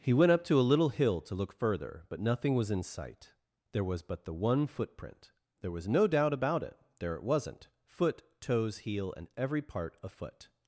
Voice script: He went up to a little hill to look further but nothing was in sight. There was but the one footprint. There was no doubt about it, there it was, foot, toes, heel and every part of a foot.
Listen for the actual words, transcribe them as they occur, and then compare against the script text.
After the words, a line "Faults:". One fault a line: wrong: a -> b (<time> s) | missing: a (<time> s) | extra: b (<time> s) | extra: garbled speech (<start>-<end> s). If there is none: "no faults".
He went up to a little hill to look further but nothing was in sight. There was but the one footprint. There was no doubt about it, there it wasn't, foot, toes, heel and every part a foot.
Faults:
wrong: was -> wasn't (7.2 s)
missing: of (10.0 s)